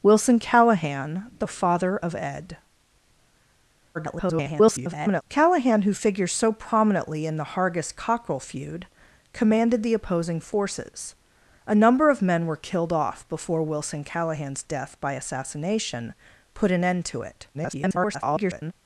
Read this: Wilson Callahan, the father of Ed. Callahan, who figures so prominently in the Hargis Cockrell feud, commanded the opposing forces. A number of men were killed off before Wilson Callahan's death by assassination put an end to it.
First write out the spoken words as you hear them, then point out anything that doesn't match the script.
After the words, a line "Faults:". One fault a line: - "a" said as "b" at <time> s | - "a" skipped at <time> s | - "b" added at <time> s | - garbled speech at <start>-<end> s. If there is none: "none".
Wilson Callahan, the father of Ed. [garbled] Callahan, who figures so prominently in the Hargis Cockrell feud, commanded the opposing forces. A number of men were killed off before Wilson Callahan's death by assassination put an end to it. [garbled]
Faults:
- garbled speech at 3.9-5.2 s
- garbled speech at 17.5-18.7 s